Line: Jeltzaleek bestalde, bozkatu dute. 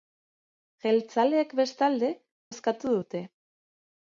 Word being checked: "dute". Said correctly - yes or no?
yes